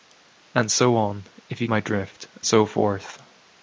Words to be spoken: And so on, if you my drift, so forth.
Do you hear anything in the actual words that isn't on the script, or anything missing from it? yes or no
no